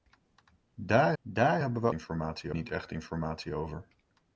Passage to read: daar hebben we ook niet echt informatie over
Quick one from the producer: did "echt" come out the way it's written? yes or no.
yes